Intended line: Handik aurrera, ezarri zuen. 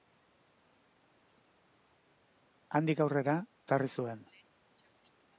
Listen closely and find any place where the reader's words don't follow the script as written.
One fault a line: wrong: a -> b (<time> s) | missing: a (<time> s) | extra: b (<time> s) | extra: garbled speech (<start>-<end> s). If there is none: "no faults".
no faults